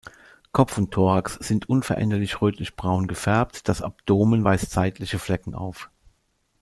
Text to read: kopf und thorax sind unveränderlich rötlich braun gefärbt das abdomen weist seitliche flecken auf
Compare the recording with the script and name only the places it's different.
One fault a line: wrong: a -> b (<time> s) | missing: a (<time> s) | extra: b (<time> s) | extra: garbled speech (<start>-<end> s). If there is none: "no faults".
no faults